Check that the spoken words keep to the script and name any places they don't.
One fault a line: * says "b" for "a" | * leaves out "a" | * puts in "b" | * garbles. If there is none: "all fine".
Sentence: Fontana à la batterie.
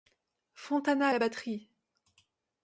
all fine